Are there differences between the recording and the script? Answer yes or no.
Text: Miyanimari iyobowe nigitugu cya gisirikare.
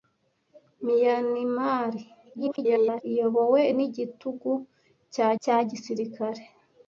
yes